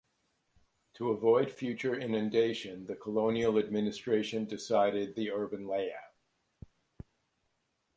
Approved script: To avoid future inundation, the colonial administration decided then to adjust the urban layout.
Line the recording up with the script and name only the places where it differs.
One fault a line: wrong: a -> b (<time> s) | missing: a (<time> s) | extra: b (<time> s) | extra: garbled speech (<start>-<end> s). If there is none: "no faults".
missing: then to adjust (5.2 s)